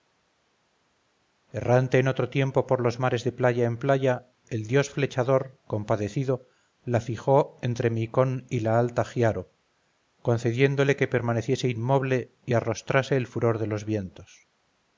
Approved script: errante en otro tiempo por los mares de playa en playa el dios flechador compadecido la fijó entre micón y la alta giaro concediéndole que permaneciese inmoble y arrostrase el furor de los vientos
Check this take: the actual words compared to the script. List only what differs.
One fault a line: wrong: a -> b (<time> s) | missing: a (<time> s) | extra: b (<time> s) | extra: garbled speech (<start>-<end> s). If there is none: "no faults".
no faults